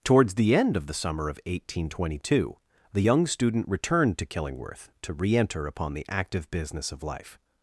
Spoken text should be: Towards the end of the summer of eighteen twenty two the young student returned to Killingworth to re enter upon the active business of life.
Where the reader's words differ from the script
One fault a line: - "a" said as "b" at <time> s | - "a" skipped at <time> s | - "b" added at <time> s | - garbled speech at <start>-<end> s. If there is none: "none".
none